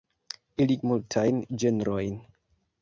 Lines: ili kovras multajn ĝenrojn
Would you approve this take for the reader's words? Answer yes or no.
no